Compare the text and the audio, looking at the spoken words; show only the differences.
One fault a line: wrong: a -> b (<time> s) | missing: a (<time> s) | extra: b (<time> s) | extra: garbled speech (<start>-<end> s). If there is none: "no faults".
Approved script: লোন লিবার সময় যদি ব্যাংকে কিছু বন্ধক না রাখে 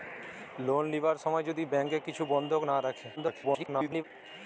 extra: garbled speech (3.2-4.0 s)